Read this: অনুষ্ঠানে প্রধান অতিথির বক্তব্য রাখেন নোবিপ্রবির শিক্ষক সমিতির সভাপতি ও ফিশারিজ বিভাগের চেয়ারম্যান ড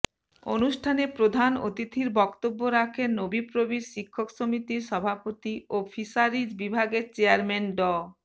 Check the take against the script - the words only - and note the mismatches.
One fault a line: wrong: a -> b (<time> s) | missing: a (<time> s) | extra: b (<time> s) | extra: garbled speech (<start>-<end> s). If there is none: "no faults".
no faults